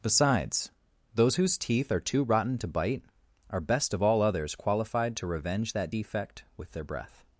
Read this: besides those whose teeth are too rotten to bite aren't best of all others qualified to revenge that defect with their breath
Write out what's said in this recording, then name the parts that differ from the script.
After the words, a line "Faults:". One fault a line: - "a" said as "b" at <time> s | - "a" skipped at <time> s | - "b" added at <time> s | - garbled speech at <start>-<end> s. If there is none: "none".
besides those whose teeth are too rotten to bite are best of all others qualified to revenge that defect with their breath
Faults:
- "aren't" said as "are" at 3.5 s